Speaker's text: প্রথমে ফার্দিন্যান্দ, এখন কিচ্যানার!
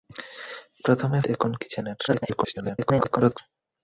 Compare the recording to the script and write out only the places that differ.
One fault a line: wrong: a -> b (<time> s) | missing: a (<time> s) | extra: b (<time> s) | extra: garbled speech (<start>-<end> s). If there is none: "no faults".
missing: ফার্দিন্যান্দ (1.2 s)
extra: garbled speech (2.1-3.4 s)